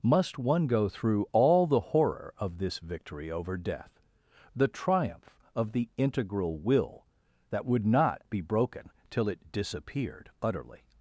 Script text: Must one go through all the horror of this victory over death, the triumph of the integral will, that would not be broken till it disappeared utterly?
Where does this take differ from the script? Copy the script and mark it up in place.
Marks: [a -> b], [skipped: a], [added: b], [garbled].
Must one go through all the horror of this victory over death, the triumph of the integral will, that would not be broken till it disappeared utterly?